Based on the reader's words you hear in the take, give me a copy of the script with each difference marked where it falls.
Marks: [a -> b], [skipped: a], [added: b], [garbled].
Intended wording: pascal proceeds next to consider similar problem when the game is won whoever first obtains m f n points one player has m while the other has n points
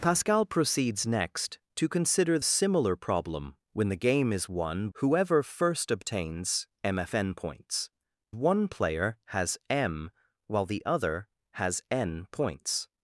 pascal proceeds next to consider similar problem when the game is won whoever first obtains m f n points one player has m while the other has n points